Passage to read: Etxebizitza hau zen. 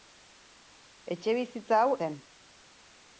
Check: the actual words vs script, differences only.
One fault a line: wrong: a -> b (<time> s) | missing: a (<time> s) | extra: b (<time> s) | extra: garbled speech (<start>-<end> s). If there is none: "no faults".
no faults